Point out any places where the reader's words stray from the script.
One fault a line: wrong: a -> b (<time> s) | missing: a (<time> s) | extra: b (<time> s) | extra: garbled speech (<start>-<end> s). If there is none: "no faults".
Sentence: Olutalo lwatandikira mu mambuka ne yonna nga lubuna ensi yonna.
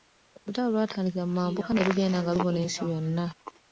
wrong: yonna -> lugenda (1.9 s)